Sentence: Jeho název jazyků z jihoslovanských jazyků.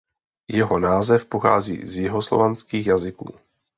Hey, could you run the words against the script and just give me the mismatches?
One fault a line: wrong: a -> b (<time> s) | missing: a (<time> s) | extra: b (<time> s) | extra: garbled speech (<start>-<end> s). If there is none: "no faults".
wrong: jazyků -> pochází (1.2 s)